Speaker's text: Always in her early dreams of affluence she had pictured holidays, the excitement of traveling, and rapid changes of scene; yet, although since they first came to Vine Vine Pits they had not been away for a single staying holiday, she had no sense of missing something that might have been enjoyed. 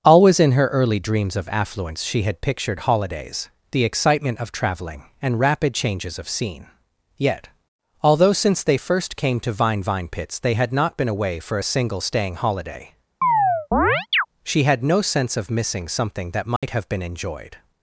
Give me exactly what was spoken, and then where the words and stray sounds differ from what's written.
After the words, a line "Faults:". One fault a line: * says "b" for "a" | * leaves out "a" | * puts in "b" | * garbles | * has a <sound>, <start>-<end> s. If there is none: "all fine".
Always in her early dreams of affluence she had pictured holidays, the excitement of traveling, and rapid changes of scene; yet, although since they first came to Vine Vine Pits they had not been away for a single staying holiday, she had no sense of missing something that might have been enjoyed.
Faults:
* has a chirp, 13.2-14.3 s
* has a dropout, 16.6-16.6 s